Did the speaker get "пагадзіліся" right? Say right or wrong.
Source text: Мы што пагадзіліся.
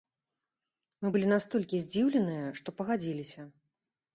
right